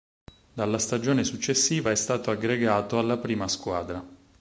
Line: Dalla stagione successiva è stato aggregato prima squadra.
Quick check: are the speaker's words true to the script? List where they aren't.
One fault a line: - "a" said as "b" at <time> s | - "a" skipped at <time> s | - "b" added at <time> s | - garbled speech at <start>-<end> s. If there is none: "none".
- "alla" added at 3.0 s